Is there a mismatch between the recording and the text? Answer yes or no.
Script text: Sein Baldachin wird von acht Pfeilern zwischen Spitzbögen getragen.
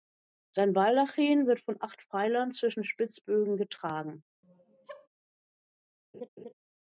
no